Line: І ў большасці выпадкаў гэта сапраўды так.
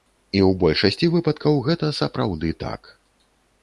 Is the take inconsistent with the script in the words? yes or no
no